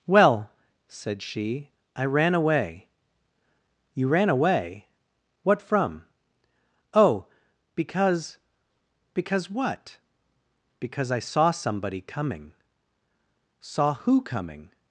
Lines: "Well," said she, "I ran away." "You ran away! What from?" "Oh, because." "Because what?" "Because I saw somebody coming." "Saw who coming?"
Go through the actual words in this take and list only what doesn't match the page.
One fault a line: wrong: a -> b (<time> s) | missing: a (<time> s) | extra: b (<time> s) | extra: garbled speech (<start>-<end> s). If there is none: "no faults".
no faults